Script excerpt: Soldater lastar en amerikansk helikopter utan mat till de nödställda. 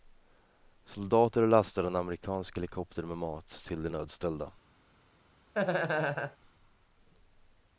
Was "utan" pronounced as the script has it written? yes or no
no